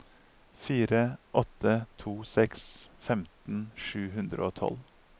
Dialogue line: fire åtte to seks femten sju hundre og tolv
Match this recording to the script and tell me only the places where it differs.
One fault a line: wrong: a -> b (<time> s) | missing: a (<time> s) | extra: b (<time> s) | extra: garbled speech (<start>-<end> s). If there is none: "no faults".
no faults